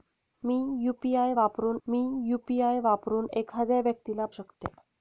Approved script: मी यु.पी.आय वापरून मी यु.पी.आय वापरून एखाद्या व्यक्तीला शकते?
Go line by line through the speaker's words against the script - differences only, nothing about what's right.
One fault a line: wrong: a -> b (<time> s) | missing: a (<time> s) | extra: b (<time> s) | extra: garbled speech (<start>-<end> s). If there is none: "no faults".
no faults